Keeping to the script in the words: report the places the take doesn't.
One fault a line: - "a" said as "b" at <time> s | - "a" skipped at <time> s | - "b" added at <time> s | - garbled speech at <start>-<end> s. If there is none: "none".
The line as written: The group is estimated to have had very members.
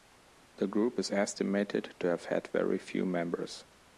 - "few" added at 2.8 s